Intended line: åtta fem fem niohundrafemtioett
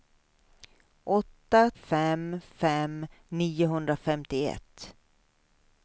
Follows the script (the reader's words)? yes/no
yes